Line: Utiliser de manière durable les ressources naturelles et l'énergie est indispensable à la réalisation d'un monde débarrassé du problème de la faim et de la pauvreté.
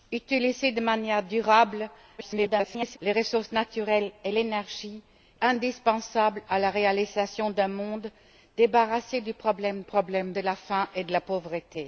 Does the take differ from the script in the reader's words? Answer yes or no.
yes